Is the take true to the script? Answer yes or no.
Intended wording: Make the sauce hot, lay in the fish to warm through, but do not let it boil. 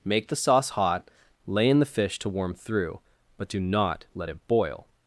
yes